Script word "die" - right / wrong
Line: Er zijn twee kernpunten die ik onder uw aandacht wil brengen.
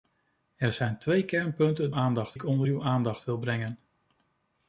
wrong